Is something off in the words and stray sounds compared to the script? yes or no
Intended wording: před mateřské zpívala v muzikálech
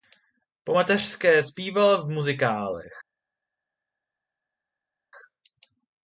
yes